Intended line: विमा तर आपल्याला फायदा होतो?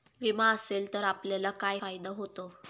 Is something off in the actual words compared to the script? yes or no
yes